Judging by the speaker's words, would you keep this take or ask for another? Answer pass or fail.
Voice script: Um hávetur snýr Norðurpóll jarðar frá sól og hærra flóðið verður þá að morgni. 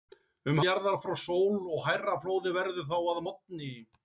fail